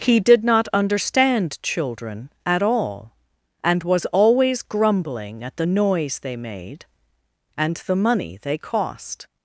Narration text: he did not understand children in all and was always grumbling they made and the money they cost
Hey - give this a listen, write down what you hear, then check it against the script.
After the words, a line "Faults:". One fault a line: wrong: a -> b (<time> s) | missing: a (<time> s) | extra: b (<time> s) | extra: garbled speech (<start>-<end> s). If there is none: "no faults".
he did not understand children at all and was always grumbling at the noise they made and the money they cost
Faults:
wrong: in -> at (2.4 s)
extra: at the noise (5.4 s)